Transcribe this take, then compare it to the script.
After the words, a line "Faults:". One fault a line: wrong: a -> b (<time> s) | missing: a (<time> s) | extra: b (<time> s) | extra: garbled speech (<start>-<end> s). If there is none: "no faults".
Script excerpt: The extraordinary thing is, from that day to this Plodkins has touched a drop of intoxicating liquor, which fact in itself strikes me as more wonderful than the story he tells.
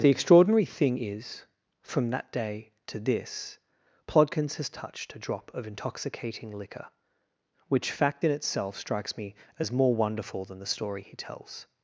The extraordinary thing is, from that day to this Plodkins has touched a drop of intoxicating liquor, which fact in itself strikes me as more wonderful than the story he tells.
Faults:
no faults